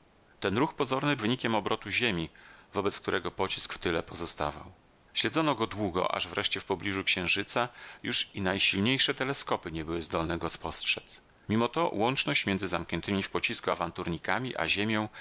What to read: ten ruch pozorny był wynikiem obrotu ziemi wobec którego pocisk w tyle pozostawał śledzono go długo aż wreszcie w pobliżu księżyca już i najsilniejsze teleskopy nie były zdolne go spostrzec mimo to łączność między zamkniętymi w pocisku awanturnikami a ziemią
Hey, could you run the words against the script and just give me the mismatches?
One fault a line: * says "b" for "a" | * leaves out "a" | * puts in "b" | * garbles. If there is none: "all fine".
* leaves out "był"